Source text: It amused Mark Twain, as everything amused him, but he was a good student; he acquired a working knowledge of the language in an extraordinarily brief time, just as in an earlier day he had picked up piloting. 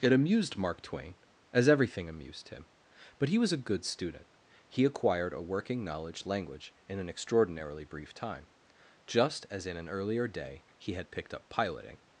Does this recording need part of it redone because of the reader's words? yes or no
yes